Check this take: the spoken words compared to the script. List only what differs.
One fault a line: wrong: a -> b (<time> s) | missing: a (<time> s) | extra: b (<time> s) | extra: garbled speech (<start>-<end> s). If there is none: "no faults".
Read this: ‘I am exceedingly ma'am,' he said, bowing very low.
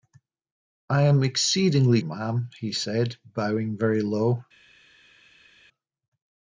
no faults